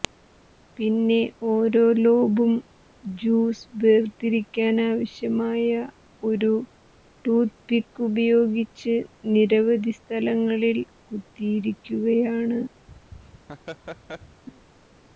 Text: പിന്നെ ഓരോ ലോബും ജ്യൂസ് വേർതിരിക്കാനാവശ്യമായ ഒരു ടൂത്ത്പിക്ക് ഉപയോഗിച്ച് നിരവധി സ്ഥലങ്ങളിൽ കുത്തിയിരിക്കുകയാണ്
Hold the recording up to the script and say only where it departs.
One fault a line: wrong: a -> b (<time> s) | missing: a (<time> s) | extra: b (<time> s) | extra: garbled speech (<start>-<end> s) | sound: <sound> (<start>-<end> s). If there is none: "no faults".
sound: laugh (12.9-14.4 s)